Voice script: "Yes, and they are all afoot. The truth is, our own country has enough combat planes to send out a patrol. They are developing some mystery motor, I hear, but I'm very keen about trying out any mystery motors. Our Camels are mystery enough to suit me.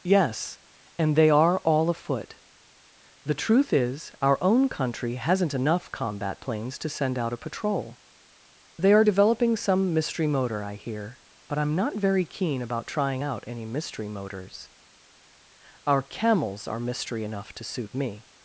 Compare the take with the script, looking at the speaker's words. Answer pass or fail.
fail